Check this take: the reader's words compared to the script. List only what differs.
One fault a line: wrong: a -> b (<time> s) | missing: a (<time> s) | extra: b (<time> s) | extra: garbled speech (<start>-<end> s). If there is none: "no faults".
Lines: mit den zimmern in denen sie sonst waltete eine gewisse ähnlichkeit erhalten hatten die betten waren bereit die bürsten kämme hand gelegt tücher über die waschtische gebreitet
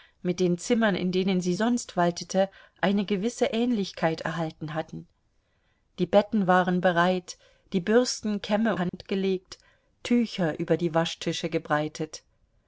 no faults